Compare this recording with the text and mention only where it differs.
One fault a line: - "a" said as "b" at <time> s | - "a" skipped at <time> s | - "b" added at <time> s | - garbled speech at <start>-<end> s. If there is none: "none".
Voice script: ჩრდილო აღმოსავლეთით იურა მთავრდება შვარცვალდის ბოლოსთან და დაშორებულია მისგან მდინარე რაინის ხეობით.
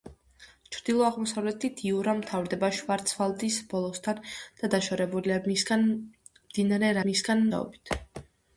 - "რაინის" said as "მისგან" at 7.1 s